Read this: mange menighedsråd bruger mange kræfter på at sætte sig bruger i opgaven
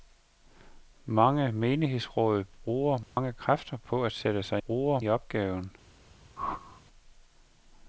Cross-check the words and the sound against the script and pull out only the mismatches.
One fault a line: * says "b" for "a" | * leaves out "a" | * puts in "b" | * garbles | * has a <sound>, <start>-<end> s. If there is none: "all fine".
* has a dropout, 3.0-3.2 s
* has a whoosh, 6.4-6.8 s